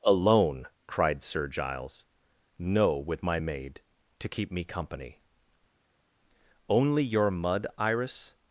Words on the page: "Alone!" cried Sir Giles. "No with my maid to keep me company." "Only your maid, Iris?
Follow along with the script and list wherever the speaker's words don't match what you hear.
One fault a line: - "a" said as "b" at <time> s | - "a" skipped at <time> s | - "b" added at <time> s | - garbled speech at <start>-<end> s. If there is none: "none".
- "maid" said as "mud" at 7.3 s